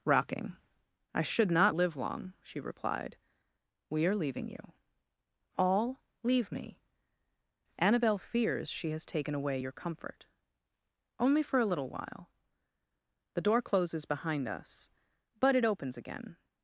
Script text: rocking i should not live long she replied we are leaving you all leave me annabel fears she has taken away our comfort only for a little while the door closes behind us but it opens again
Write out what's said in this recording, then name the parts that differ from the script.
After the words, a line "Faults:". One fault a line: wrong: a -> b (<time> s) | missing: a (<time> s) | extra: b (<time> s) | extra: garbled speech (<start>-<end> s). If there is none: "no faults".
rocking i should not live long she replied we are leaving you all leave me annabel fears she has taken away your comfort only for a little while the door closes behind us but it opens again
Faults:
wrong: our -> your (9.6 s)